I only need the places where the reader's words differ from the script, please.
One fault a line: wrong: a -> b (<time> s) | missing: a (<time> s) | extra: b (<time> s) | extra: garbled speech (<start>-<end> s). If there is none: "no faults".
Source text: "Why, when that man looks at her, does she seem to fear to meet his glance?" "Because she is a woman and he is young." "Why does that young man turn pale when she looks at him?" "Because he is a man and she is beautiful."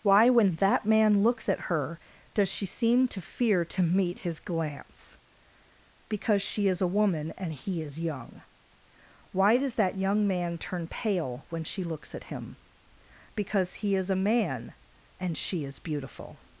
no faults